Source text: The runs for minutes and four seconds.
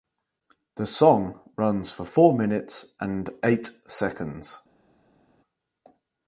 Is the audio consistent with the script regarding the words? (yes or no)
no